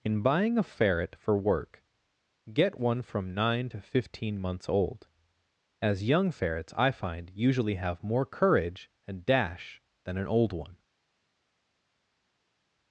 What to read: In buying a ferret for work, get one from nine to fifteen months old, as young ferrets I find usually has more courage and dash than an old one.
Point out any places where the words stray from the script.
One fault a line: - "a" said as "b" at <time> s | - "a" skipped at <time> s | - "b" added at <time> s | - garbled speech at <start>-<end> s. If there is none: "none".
- "has" said as "have" at 7.7 s